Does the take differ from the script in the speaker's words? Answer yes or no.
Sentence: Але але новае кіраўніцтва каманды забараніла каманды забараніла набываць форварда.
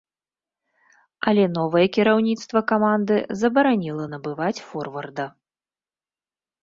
yes